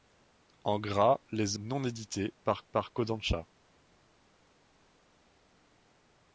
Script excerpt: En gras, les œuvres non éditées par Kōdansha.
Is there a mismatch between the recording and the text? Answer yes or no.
yes